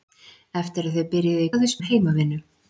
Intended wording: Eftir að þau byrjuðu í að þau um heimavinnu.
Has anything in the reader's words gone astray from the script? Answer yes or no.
no